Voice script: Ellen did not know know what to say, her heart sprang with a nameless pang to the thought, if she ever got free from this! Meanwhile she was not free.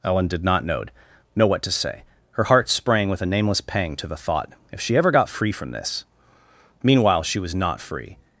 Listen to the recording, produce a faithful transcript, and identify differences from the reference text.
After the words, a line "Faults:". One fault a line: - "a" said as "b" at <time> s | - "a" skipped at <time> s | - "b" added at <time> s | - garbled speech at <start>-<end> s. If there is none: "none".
Ellen did not know know what to say, her heart sprang with a nameless pang to the thought, if she ever got free from this! Meanwhile she was not free.
Faults:
none